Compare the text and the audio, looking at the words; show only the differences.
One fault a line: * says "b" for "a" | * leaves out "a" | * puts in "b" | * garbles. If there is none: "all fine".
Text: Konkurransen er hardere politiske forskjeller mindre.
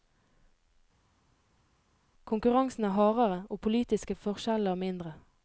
* puts in "og"